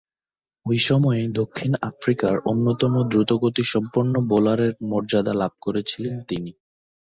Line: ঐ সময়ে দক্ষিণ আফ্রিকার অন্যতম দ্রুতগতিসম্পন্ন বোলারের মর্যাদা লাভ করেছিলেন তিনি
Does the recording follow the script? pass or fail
pass